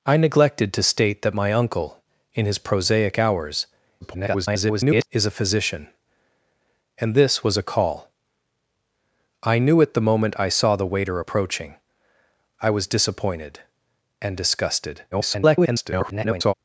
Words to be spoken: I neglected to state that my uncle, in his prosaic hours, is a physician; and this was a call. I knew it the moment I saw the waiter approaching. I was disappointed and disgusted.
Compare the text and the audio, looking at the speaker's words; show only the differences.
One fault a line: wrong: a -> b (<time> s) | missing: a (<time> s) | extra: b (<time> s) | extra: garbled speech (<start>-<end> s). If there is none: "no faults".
extra: garbled speech (4.0-5.1 s)
extra: garbled speech (15.1-16.5 s)